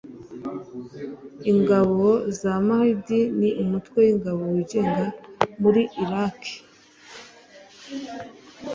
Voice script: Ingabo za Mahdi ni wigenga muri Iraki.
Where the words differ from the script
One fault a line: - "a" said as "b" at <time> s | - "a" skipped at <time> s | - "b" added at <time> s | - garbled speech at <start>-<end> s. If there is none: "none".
- "umutwe w'ingabo" added at 3.6 s